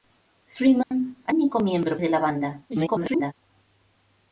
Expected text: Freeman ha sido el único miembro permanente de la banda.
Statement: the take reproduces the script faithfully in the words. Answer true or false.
false